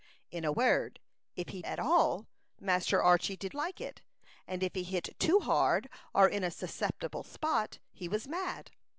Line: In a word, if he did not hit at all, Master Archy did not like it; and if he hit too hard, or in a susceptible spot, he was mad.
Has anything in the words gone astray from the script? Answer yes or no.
yes